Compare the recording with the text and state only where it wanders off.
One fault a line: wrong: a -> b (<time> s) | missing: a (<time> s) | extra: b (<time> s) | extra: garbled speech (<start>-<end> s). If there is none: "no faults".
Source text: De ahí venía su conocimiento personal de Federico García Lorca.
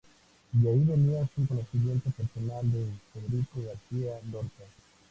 no faults